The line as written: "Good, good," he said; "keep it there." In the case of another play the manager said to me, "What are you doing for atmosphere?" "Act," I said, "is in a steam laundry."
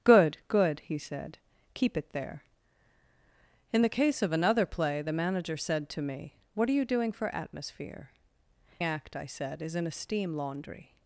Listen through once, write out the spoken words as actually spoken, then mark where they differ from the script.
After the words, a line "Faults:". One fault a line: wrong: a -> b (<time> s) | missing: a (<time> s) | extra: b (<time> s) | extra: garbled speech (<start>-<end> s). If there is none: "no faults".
"Good, good," he said; "keep it there." In the case of another play the manager said to me, "What are you doing for atmosphere?" "Act," I said, "is in a steam laundry."
Faults:
no faults